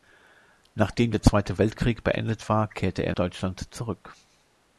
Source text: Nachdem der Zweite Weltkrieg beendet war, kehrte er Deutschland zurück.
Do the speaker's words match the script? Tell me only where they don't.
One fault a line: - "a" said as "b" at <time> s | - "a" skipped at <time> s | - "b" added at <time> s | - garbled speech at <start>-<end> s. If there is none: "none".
none